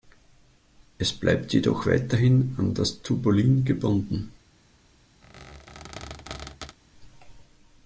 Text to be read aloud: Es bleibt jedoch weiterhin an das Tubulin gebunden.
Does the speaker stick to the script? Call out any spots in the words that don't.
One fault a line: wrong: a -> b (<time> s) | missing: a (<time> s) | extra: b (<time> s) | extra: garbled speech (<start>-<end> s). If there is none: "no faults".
no faults